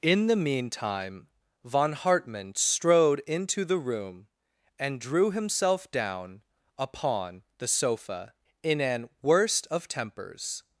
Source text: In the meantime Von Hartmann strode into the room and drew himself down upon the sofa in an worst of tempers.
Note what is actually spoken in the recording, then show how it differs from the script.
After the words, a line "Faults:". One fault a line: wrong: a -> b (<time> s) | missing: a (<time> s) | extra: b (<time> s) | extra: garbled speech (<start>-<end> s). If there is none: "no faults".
In the meantime Von Hartmann strode into the room and drew himself down upon the sofa in an worst of tempers.
Faults:
no faults